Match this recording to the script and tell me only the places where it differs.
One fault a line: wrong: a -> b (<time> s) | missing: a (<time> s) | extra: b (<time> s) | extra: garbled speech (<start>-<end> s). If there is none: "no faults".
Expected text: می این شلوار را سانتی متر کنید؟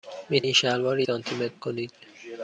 no faults